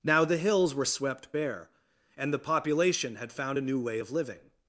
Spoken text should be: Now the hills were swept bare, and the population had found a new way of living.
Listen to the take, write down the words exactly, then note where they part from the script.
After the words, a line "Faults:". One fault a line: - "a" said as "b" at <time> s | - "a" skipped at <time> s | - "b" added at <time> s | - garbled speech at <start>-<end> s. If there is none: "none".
Now the hills were swept bare, and the population had found a new way of living.
Faults:
none